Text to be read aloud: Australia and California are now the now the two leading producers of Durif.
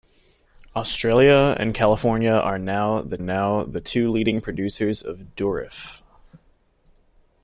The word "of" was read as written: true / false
true